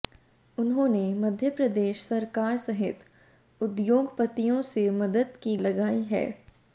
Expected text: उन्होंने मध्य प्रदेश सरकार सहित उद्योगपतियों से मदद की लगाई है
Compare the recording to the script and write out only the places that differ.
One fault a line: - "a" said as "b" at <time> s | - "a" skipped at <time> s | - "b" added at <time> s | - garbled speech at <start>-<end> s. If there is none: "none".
none